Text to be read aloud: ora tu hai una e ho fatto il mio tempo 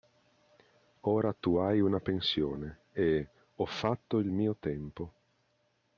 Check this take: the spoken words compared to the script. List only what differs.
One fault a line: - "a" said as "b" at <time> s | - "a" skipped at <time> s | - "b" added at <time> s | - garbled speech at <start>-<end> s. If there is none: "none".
- "pensione" added at 2.0 s